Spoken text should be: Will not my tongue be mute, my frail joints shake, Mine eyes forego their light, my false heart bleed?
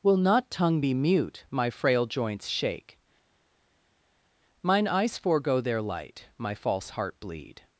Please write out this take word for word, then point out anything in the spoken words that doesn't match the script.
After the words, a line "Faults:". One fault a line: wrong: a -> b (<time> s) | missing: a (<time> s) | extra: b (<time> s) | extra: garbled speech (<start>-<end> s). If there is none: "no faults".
Will not tongue be mute, my frail joints shake, Mine eyes forego their light, my false heart bleed?
Faults:
missing: my (0.5 s)